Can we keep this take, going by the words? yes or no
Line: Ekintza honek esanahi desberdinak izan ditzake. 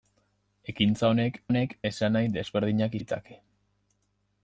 no